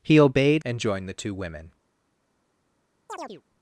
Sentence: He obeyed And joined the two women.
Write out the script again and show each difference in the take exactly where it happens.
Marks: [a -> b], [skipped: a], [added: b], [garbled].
He obeyed And joined the two women.